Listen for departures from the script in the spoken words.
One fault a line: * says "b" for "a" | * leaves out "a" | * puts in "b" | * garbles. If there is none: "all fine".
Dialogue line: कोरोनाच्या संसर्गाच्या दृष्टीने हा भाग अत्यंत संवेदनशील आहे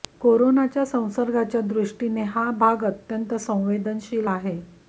all fine